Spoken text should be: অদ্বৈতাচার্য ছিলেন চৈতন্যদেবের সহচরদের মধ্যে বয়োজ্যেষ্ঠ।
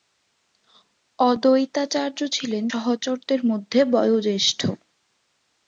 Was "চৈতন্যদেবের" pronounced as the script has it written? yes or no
no